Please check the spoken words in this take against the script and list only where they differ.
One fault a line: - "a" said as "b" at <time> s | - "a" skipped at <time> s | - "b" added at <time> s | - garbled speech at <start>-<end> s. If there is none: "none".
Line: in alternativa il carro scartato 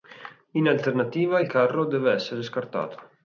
- "deve essere" added at 1.9 s